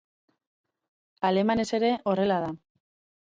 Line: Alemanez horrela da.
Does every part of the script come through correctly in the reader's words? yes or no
no